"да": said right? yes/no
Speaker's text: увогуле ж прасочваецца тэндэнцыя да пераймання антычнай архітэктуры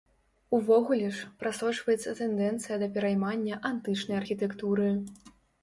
yes